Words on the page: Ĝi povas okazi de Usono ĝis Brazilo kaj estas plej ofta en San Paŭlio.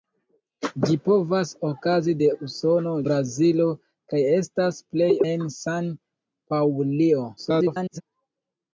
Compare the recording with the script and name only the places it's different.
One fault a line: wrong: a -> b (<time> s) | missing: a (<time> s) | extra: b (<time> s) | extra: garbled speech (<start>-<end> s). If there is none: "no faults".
missing: ĝis (2.9 s)
missing: ofta (5.1 s)
extra: garbled speech (7.4-8.0 s)